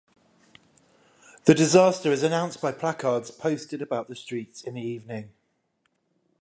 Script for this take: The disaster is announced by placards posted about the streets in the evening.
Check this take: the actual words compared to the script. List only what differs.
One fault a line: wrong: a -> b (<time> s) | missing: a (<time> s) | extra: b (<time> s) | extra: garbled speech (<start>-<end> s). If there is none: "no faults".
no faults